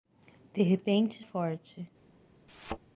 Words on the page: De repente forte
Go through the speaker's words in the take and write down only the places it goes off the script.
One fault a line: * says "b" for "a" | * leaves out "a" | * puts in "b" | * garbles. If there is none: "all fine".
all fine